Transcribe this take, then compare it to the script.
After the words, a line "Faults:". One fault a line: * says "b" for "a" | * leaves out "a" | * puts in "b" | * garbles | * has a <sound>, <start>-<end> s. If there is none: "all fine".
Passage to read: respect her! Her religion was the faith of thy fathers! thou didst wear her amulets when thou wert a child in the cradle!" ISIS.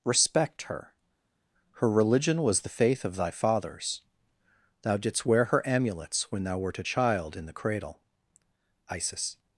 respect her! Her religion was the faith of thy fathers! thou didst wear her amulets when thou wert a child in the cradle!" ISIS.
Faults:
all fine